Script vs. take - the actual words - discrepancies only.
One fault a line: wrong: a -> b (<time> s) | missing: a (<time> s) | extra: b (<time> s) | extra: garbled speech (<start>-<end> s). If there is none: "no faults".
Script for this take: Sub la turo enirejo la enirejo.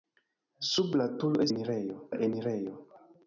no faults